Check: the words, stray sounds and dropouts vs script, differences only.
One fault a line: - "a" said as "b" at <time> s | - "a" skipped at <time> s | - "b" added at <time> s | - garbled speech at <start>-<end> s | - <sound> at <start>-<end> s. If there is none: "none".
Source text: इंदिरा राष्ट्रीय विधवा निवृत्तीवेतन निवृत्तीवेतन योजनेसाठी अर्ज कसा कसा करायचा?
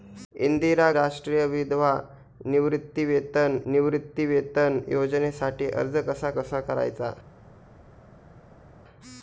none